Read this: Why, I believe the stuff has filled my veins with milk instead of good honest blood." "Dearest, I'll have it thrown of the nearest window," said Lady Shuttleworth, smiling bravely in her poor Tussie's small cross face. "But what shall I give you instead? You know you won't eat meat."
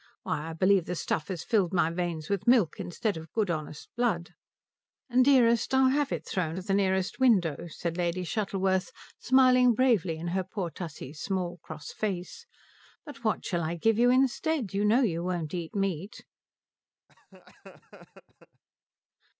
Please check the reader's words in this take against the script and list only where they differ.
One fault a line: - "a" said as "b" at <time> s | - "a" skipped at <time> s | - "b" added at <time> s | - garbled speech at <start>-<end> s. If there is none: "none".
none